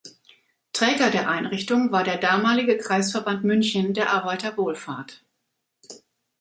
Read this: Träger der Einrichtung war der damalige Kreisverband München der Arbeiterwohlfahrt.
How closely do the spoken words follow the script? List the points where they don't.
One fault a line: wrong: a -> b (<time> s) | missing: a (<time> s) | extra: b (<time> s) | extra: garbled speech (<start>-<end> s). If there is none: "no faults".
no faults